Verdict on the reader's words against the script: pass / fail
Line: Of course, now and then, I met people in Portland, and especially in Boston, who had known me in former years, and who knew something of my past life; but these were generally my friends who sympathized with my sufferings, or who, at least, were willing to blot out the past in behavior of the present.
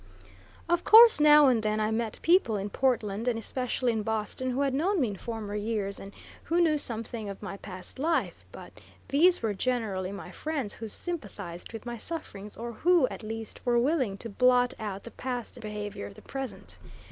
pass